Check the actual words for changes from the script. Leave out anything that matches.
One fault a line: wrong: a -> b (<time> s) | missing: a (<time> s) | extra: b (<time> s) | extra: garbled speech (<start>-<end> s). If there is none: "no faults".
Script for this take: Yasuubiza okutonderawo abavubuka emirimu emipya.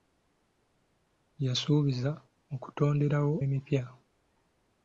missing: abavubuka emirimu (3.4 s)